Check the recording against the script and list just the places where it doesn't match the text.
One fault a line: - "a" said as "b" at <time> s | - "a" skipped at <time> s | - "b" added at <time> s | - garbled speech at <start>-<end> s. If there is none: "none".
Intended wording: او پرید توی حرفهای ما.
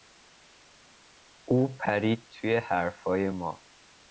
none